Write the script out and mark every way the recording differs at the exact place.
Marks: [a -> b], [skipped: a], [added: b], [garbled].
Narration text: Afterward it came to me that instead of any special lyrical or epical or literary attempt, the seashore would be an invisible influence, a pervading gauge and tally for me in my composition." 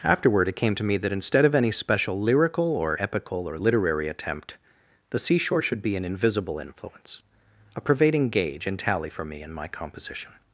Afterward it came to me that instead of any special lyrical or epical or literary attempt, the seashore [would -> should] be an invisible influence, a pervading gauge and tally for me in my composition."